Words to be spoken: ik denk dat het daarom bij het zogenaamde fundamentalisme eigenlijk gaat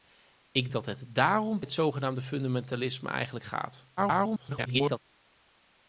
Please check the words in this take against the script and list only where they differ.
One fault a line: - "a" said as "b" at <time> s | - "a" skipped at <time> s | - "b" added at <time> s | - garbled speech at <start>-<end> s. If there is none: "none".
- "denk" skipped at 0.7 s
- "bij" skipped at 1.6 s
- garbled speech at 4.0-5.0 s